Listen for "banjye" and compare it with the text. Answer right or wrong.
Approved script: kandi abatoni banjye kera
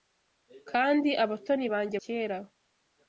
right